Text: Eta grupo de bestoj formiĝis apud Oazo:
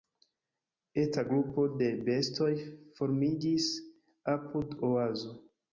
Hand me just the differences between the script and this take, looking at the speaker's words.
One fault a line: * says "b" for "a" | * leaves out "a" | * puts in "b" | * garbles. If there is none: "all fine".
all fine